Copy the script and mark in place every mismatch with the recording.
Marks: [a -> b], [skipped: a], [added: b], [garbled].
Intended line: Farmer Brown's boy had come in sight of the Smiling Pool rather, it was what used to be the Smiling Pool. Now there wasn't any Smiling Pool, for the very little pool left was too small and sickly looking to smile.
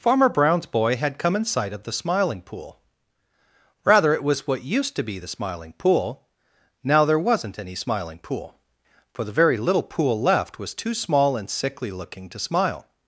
Farmer Brown's boy had come in sight of the Smiling Pool rather, it was what used to be the Smiling Pool. Now there wasn't any Smiling Pool, for the very little pool left was too small and sickly looking to smile.